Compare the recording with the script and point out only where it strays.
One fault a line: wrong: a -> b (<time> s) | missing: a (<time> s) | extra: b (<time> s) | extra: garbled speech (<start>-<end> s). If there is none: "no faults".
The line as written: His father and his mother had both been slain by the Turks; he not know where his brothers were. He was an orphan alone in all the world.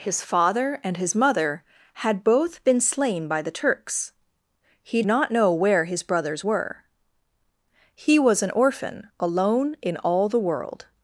no faults